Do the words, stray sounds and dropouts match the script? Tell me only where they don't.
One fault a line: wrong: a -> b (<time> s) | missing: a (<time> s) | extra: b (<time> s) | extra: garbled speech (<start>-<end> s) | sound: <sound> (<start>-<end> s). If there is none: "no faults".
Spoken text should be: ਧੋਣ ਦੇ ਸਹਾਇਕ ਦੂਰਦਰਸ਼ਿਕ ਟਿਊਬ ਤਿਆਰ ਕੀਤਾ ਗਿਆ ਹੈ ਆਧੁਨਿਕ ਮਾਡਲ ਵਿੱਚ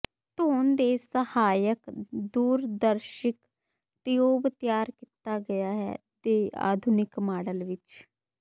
extra: ਦੇ (6.2 s)